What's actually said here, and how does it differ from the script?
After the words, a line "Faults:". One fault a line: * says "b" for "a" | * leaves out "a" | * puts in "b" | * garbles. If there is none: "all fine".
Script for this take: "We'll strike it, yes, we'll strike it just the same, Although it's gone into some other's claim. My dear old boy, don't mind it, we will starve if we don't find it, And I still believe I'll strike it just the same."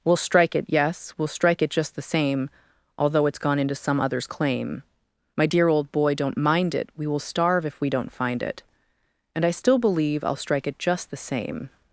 "We'll strike it, yes, we'll strike it just the same, Although it's gone into some other's claim. My dear old boy, don't mind it, we will starve if we don't find it, And I still believe I'll strike it just the same."
Faults:
all fine